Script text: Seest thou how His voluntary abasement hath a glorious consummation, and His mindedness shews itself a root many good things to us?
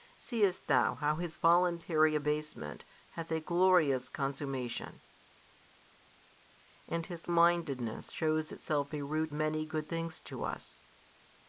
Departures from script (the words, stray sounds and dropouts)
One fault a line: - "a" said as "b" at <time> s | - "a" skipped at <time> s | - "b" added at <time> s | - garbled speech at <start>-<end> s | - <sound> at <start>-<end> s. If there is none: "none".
none